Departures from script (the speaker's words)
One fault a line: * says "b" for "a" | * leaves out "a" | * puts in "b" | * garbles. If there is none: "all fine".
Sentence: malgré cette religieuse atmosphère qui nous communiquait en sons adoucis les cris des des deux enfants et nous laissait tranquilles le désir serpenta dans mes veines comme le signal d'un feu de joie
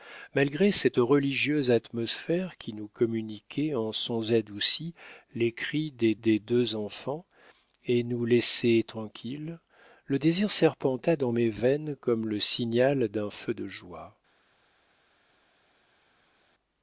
all fine